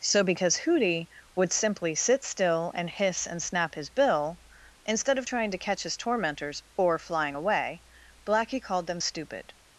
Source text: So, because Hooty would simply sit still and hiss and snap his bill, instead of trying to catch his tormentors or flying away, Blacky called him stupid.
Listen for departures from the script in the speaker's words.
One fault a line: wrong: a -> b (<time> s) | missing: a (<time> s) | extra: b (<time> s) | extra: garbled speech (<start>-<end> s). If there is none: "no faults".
wrong: him -> them (8.9 s)